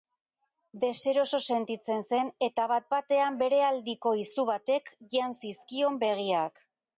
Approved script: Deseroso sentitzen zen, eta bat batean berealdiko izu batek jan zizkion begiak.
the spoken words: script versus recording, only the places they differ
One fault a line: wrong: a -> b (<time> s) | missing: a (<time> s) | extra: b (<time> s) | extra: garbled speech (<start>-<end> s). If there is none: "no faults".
no faults